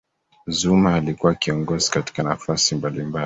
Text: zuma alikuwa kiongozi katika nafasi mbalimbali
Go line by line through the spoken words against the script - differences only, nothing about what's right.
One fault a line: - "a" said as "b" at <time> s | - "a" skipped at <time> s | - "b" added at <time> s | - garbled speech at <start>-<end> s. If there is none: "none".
none